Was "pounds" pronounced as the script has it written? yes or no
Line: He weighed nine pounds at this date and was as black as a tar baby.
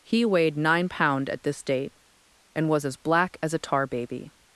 no